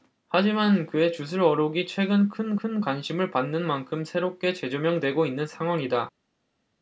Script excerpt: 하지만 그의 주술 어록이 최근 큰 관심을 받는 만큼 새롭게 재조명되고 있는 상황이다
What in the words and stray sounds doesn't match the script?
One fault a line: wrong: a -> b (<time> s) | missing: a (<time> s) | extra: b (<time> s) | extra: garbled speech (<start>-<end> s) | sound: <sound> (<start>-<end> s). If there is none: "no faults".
extra: 큰 (2.5 s)